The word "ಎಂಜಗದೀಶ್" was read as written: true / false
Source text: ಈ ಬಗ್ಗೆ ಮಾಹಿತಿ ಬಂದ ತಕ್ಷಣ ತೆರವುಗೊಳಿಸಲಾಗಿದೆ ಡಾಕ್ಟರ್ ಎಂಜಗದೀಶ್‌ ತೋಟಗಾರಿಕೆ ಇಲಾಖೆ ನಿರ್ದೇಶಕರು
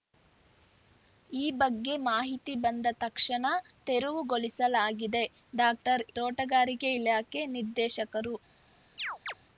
false